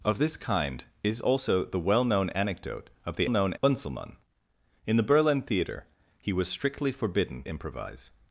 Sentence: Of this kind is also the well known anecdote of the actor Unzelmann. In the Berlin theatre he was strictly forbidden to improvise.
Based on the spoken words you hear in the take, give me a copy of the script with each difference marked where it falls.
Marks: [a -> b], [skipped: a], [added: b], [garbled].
Of this kind is also the well known anecdote of the [actor -> known] Unzelmann. In the Berlin theatre he was strictly forbidden [skipped: to] improvise.